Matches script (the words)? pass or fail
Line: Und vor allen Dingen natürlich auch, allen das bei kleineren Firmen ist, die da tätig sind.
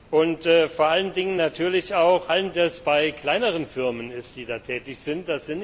pass